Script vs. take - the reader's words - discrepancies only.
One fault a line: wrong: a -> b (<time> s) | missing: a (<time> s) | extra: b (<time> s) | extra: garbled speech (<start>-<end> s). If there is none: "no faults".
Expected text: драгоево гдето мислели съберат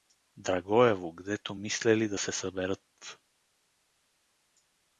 extra: да се (2.1 s)